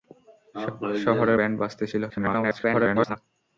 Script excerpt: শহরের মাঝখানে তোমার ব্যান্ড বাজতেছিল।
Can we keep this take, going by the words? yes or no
no